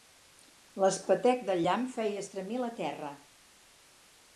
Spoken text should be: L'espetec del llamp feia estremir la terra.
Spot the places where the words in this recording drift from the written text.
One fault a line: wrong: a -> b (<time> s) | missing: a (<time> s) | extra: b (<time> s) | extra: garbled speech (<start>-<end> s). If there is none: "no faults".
no faults